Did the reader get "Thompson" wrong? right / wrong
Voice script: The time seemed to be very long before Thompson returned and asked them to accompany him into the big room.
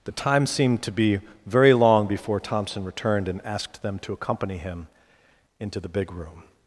right